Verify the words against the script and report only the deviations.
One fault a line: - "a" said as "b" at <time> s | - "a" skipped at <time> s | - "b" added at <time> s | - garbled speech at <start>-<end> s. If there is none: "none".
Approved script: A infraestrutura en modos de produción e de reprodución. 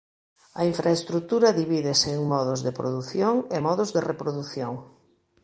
- "divídese" added at 1.6 s
- "modos" added at 3.7 s